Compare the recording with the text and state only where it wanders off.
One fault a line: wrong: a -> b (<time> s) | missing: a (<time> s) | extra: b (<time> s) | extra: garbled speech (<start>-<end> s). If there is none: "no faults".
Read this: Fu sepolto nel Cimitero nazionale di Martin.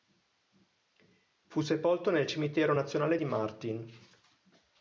no faults